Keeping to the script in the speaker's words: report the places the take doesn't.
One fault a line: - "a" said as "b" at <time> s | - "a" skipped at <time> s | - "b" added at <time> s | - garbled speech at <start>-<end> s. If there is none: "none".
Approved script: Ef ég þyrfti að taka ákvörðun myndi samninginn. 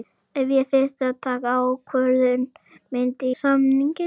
none